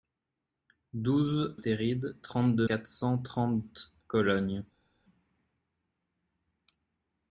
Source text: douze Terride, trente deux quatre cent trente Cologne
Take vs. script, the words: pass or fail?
pass